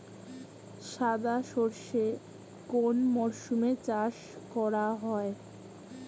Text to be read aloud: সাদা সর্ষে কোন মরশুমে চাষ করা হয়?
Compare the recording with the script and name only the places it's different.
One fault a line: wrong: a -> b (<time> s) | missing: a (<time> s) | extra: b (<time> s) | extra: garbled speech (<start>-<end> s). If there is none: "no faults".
no faults